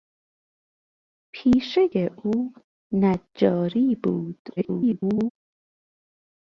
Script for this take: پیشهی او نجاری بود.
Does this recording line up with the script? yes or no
no